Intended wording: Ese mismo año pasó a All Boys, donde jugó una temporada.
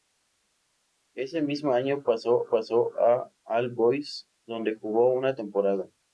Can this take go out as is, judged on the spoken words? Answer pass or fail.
fail